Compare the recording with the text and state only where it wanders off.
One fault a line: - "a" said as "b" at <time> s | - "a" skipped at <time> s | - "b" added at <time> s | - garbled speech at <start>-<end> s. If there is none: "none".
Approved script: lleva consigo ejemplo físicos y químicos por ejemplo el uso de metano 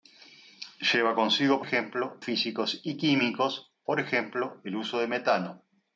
none